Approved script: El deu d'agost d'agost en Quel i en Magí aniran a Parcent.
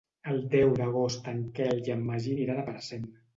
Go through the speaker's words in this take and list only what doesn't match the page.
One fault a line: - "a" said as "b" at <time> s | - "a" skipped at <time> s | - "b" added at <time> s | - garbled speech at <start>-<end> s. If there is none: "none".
- "d'agost" skipped at 1.3 s